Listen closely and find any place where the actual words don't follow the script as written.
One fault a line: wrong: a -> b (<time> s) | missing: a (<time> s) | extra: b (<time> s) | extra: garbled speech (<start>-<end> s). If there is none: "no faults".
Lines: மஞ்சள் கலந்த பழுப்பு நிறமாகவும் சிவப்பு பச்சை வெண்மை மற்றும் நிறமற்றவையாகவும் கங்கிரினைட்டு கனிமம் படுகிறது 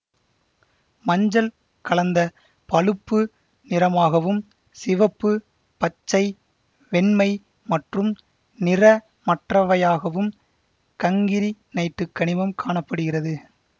extra: காண (12.6 s)